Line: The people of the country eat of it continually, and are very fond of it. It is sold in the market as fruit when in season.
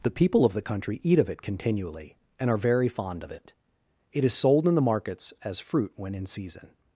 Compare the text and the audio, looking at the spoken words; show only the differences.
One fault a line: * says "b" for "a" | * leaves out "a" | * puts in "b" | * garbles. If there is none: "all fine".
* says "markets" for "market"